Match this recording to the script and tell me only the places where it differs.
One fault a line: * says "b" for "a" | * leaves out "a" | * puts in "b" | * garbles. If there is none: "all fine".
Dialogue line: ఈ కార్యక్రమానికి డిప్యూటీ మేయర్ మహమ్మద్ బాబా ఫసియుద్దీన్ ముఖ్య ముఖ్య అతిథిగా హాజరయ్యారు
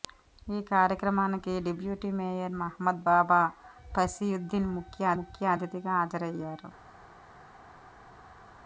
all fine